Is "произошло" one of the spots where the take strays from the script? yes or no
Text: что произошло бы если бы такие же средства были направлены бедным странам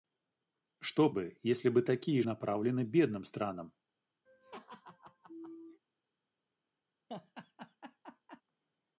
yes